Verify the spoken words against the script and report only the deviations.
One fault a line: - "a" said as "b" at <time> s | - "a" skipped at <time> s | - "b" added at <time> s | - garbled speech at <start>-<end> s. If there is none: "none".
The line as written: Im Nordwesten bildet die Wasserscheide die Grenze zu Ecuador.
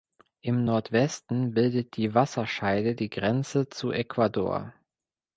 none